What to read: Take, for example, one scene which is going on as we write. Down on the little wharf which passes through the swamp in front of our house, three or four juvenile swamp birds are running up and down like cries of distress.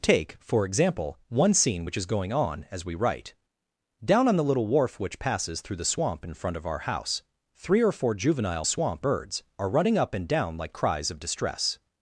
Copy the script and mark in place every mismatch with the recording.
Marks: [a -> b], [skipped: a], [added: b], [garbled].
Take, for example, one scene which is going on as we write. Down on the little wharf which passes through the swamp in front of our house, three or four juvenile swamp birds are running up and down like cries of distress.